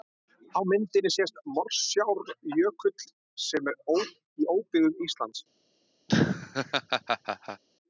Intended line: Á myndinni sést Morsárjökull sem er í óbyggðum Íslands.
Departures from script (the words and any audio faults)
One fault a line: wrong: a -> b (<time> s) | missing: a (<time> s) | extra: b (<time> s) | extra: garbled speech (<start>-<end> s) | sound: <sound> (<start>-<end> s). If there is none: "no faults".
sound: laugh (6.1-7.6 s)